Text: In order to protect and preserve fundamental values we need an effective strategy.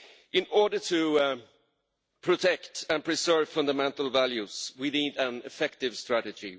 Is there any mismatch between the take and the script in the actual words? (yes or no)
no